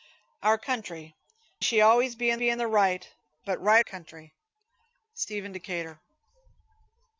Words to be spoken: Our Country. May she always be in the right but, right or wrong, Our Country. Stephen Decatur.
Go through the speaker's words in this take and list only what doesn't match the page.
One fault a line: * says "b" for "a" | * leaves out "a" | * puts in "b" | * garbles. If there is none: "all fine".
* leaves out "May"
* puts in "be in"
* leaves out "or wrong Our"